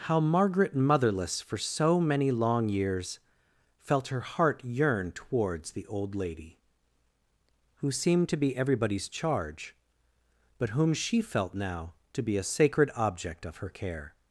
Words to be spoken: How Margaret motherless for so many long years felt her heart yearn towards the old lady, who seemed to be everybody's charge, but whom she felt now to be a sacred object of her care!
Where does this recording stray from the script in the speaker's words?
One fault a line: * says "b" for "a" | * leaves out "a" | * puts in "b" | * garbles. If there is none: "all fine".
all fine